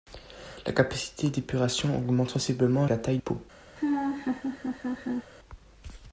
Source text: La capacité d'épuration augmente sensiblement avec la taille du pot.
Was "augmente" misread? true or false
false